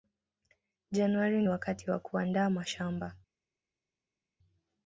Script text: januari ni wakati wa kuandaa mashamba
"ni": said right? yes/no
no